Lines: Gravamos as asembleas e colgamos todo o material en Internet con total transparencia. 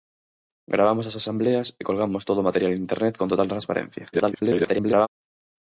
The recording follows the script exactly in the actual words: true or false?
false